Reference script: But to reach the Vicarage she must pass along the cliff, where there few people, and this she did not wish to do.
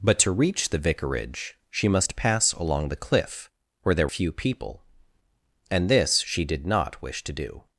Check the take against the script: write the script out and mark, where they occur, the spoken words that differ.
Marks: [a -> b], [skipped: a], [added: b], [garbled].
But to reach the Vicarage she must pass along the cliff, where there few people, and this she did not wish to do.